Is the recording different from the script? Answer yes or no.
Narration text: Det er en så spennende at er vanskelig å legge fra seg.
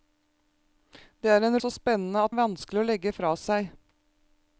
no